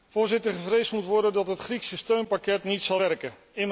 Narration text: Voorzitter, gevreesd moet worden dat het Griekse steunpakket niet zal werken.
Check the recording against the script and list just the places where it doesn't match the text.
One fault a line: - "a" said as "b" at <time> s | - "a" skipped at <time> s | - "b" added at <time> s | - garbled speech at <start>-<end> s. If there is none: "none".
none